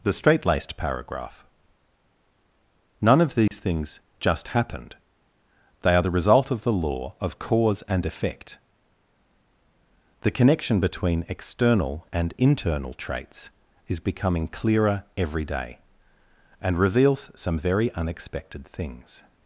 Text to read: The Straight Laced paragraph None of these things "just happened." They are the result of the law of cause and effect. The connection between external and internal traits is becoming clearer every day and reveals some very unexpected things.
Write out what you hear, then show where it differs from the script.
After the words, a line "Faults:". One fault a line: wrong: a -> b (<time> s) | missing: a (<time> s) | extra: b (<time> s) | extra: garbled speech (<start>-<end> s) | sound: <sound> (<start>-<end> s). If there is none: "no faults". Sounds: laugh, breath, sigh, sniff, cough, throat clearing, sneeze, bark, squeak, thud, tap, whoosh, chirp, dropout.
The Straight Laced paragraph None of these things "just happened." They are the result of the law of cause and effect. The connection between external and internal traits is becoming clearer every day and reveals some very unexpected things.
Faults:
sound: dropout (3.5-3.5 s)